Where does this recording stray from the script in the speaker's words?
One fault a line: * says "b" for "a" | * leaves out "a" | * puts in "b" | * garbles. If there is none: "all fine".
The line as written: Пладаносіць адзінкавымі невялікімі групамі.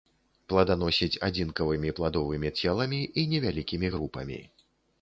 * puts in "пладовымі целамі і"